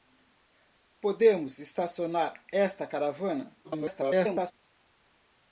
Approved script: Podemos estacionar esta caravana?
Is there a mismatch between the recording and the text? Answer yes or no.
yes